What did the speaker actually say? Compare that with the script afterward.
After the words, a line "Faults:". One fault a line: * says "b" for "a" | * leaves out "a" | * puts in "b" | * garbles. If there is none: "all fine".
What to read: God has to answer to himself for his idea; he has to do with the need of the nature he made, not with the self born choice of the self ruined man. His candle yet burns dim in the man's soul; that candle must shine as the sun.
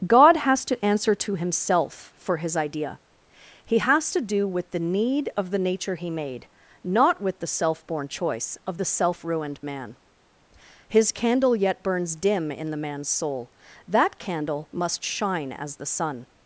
God has to answer to himself for his idea; he has to do with the need of the nature he made, not with the self born choice of the self ruined man. His candle yet burns dim in the man's soul; that candle must shine as the sun.
Faults:
all fine